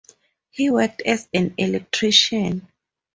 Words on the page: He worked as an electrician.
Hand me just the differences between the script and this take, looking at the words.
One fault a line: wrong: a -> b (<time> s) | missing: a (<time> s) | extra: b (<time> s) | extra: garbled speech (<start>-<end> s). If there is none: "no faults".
no faults